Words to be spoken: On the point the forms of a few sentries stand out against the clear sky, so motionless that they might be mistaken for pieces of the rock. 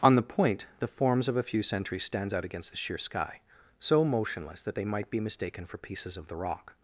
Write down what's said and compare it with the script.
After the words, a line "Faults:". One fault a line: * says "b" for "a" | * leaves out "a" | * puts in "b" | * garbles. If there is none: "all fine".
On the point the forms of a few sentries stands out against the sheer sky, so motionless that they might be mistaken for pieces of the rock.
Faults:
* says "stands" for "stand"
* says "sheer" for "clear"